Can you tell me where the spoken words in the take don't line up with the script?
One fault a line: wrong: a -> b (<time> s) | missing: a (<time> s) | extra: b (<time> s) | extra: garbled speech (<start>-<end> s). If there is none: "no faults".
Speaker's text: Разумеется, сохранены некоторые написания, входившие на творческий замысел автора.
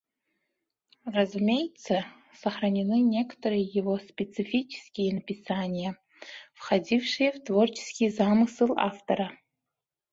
extra: его специфические (3.6 s)
wrong: на -> в (7.3 s)